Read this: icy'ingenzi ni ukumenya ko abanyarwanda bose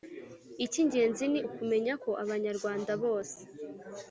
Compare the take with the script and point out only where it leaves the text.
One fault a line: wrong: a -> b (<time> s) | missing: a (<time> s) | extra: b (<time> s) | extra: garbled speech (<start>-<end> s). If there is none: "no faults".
no faults